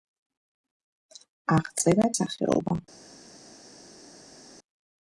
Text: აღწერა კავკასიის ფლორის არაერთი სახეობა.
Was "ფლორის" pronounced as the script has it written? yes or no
no